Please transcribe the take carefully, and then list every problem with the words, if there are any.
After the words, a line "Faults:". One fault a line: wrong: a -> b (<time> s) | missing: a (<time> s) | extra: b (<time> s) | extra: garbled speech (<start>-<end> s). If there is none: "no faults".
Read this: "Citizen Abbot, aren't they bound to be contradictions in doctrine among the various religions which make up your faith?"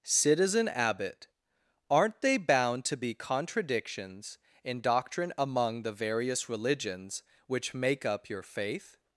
"Citizen Abbot, aren't they bound to be contradictions in doctrine among the various religions which make up your faith?"
Faults:
no faults